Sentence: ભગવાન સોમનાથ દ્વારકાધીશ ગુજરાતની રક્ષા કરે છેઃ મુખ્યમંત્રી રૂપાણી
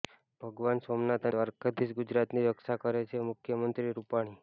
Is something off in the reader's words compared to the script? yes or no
no